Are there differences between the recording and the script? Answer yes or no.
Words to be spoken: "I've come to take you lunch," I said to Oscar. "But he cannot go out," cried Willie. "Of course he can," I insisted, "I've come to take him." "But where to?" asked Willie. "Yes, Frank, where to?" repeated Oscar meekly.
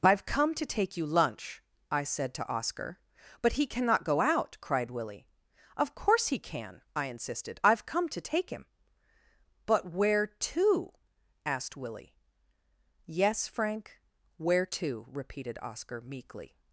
no